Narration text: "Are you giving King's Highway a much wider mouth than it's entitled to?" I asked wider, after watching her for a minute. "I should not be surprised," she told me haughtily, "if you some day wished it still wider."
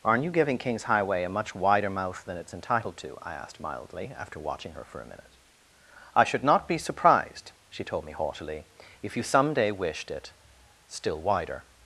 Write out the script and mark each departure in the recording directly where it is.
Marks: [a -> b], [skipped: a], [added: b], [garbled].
["Are -> Aren't] you giving King's Highway a much wider mouth than it's entitled to?" I asked [wider, -> mildly] after watching her for a minute. "I should not be surprised," she told me haughtily, "if you some day wished it still wider."